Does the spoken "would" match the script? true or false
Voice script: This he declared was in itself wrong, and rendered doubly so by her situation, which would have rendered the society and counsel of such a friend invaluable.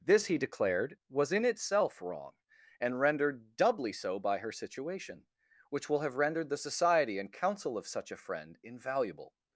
false